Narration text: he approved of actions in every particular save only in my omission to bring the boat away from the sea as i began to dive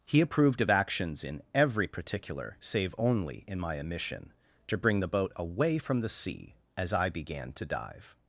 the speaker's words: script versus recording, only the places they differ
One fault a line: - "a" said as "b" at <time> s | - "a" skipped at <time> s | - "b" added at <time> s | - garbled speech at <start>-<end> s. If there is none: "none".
none